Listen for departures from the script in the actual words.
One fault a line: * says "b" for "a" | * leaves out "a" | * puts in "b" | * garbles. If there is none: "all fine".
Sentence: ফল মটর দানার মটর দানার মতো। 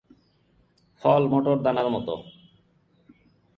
* leaves out "মটর দানার"